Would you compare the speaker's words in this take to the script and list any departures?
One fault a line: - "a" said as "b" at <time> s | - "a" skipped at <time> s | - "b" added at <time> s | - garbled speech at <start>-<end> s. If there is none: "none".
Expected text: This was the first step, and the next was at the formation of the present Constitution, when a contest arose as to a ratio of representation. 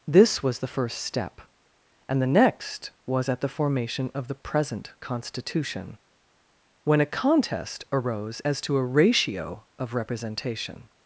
none